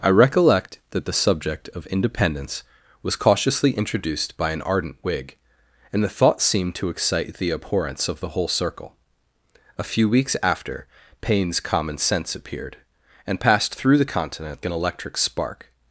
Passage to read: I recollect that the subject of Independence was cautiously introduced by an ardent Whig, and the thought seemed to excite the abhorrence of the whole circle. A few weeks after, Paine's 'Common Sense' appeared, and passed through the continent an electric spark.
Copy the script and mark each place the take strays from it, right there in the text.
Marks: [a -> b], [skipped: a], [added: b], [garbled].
I recollect that the subject of Independence was cautiously introduced by an ardent Whig, and the thought seemed to excite the abhorrence of the whole circle. A few weeks after, Paine's 'Common Sense' appeared, and passed through the continent an electric spark.